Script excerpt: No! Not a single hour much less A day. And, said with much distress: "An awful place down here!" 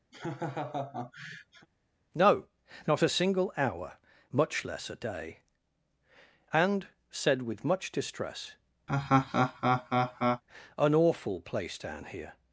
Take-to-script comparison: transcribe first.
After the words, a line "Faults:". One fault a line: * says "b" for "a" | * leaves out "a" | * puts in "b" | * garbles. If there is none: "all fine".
No! Not a single hour much less A day. And, said with much distress: "An awful place down here!"
Faults:
all fine